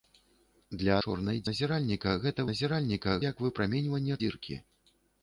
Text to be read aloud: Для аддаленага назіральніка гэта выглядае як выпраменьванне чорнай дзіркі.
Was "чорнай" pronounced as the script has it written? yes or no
no